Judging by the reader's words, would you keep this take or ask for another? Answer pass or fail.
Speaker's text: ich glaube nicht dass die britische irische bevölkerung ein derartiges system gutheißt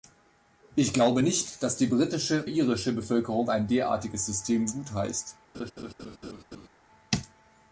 pass